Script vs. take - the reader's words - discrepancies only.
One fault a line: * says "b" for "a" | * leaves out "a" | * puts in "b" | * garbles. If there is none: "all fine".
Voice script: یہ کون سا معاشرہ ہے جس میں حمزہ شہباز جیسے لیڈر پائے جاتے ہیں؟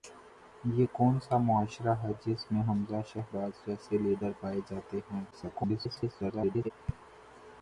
* garbles